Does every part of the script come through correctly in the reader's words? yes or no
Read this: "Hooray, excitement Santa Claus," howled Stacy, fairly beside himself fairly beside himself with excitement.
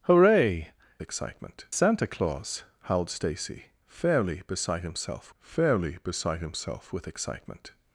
yes